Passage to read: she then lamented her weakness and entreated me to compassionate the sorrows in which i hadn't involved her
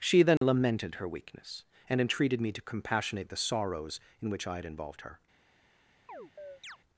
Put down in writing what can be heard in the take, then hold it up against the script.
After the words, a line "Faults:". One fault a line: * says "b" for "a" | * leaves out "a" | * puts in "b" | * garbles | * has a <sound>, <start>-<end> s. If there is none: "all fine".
she then lamented her weakness and entreated me to compassionate the sorrows in which i had involved her
Faults:
* has a dropout, 0.4-0.4 s
* says "had" for "hadn't"
* has a chirp, 6.1-6.8 s